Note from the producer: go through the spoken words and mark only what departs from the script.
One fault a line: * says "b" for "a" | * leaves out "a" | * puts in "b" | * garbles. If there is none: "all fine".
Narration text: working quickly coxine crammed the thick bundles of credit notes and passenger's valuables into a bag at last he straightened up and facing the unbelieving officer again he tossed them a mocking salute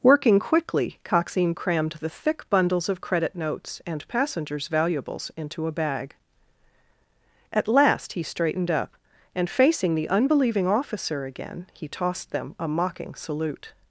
all fine